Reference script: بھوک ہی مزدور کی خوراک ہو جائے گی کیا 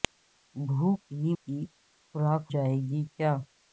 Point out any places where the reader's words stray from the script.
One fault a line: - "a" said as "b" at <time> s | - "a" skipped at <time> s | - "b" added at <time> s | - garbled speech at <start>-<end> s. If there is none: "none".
- "مزدور" skipped at 1.3 s
- "ہو" skipped at 2.4 s